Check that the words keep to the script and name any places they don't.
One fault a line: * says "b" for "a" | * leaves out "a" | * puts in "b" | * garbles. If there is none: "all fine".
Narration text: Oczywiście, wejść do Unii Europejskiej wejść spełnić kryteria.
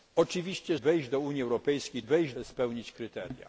all fine